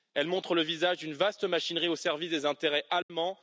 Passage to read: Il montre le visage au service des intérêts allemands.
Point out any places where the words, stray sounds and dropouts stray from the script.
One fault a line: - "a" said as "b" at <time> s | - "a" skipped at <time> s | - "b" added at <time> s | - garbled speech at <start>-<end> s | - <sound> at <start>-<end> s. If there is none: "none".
- "Il" said as "Elle" at 0.1 s
- "d'une vaste machinerie" added at 1.0 s
- dropout at 3.0-3.1 s